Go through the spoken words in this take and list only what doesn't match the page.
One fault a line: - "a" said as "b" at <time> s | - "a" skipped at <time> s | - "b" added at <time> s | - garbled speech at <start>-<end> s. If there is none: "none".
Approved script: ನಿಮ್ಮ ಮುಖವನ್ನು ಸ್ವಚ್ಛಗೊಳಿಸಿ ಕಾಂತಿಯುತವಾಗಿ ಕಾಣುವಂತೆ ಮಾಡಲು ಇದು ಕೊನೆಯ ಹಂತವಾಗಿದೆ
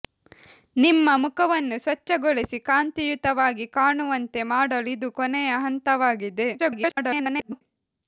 - garbled speech at 6.6-7.6 s